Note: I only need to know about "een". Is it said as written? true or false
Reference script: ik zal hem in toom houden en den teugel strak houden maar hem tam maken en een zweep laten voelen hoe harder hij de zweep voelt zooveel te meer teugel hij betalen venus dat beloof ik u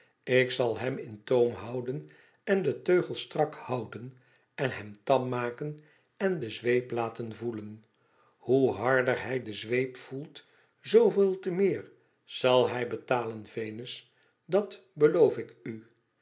false